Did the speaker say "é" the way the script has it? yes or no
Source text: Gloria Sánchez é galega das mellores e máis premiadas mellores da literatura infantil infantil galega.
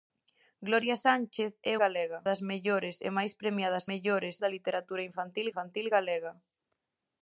yes